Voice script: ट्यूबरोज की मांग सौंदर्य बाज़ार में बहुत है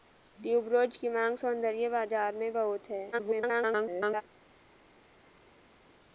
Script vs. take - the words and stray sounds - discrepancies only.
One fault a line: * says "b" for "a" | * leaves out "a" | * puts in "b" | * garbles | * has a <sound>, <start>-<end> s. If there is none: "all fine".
* garbles